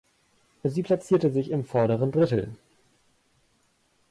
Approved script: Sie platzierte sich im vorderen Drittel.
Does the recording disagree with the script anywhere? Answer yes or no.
no